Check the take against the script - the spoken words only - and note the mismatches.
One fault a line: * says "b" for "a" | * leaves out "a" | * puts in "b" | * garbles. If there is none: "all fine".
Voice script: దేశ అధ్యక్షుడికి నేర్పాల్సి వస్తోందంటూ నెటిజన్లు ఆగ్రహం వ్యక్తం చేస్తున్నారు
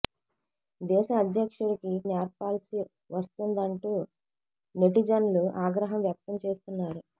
all fine